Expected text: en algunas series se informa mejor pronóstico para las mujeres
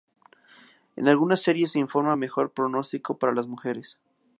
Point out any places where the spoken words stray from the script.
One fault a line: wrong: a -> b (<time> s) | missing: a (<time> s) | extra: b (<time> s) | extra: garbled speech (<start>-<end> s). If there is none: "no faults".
no faults